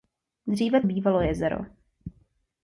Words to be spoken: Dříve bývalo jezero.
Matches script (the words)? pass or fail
pass